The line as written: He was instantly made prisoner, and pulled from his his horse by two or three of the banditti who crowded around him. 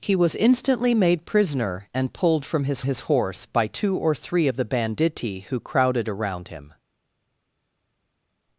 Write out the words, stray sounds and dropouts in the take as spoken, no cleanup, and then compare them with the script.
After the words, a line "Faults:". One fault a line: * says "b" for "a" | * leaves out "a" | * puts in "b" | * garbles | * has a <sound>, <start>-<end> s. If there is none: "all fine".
He was instantly made prisoner, and pulled from his his horse by two or three of the banditti who crowded around him.
Faults:
all fine